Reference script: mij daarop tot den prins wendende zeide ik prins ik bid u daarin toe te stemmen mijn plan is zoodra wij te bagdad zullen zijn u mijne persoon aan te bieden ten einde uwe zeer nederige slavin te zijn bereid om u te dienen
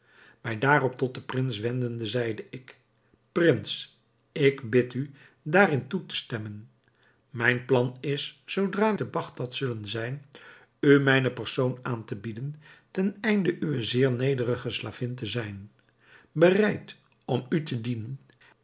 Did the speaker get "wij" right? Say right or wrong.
wrong